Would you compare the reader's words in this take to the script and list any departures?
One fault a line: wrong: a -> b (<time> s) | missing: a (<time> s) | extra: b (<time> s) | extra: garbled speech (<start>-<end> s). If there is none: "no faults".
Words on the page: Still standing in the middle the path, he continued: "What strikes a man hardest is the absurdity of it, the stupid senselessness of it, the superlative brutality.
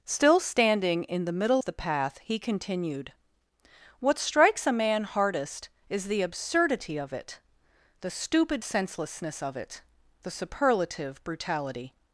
no faults